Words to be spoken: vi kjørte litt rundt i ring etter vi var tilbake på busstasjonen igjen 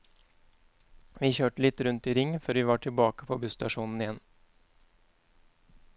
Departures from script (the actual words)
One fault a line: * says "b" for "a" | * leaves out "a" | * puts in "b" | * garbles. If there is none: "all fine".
* says "før" for "etter"